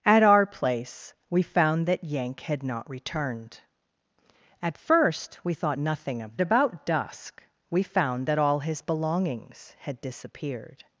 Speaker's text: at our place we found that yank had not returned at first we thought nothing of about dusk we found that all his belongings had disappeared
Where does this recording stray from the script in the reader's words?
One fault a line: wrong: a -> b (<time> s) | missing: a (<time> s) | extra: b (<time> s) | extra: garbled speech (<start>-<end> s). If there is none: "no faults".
no faults